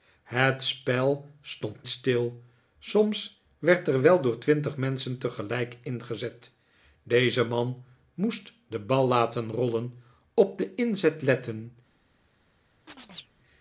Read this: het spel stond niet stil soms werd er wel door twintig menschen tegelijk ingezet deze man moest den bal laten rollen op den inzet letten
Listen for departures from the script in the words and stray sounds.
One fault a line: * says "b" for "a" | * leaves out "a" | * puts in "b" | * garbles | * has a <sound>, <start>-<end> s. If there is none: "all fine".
* leaves out "niet"
* has a chirp, 12.9-13.3 s